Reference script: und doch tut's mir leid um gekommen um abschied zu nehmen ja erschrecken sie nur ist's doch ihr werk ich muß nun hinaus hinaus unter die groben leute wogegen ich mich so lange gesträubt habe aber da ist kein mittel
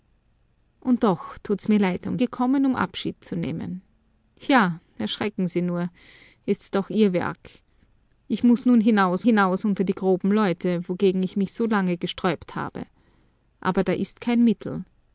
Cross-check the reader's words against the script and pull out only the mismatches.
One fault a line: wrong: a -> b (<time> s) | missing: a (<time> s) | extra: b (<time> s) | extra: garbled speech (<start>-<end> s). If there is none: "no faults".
no faults